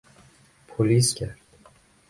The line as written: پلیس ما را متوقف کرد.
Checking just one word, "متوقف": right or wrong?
wrong